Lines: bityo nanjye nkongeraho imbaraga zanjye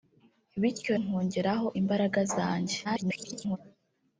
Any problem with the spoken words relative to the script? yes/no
yes